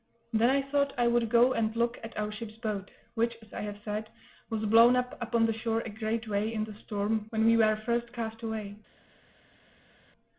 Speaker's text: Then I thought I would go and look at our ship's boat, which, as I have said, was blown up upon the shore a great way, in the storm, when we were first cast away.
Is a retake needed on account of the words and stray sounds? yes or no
no